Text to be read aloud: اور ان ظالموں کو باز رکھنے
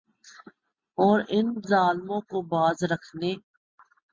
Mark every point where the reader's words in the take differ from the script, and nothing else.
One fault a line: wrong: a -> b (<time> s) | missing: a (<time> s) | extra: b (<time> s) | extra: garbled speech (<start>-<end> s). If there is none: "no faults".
no faults